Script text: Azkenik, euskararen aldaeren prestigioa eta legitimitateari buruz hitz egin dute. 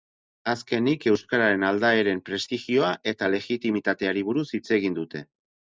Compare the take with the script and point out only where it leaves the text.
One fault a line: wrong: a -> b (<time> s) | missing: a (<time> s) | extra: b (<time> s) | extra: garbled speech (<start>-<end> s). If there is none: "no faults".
no faults